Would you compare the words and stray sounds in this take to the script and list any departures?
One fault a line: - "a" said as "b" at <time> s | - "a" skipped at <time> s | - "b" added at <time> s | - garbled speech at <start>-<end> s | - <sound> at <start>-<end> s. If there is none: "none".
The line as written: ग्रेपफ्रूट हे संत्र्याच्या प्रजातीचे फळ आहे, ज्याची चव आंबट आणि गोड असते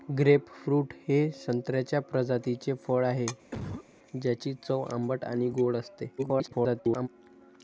- cough at 3.5-3.9 s
- garbled speech at 6.2-7.1 s